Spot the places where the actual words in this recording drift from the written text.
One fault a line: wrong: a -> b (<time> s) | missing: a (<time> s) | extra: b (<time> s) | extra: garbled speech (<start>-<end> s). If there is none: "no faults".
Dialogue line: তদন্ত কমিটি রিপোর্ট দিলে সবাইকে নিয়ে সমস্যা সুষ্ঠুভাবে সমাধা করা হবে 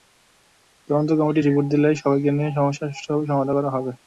no faults